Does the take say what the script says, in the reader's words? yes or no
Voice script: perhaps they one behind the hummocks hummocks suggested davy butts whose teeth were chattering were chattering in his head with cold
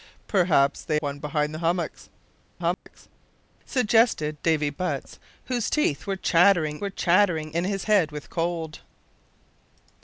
yes